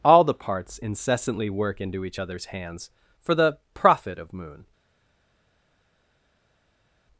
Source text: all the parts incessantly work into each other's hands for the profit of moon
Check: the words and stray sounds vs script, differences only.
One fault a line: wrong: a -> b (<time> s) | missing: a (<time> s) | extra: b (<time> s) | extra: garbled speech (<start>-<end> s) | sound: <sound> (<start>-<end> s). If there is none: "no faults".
no faults